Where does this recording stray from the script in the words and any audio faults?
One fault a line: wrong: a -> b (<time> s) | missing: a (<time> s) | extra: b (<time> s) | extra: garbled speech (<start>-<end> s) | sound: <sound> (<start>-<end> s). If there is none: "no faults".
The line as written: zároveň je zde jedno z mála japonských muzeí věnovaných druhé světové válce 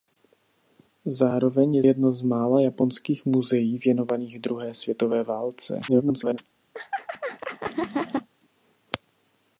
missing: zde (1.8 s)
extra: garbled speech (5.9-6.4 s)
sound: laugh (6.7-8.3 s)